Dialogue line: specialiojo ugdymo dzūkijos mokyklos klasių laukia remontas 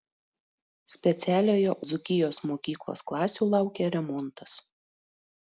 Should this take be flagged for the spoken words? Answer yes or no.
yes